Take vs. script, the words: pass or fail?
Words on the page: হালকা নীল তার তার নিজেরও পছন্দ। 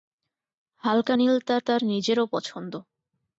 pass